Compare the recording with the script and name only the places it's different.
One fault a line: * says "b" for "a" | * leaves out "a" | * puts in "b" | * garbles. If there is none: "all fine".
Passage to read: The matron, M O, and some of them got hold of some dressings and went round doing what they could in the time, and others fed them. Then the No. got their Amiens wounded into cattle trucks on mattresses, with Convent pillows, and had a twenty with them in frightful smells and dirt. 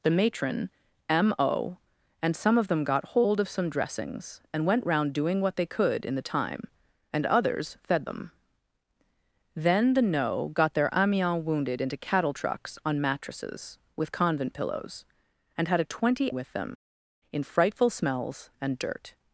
all fine